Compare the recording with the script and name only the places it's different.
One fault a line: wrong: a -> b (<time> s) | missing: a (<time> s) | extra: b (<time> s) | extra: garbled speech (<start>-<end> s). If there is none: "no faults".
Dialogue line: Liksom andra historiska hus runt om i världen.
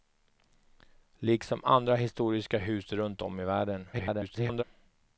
extra: garbled speech (3.9-4.6 s)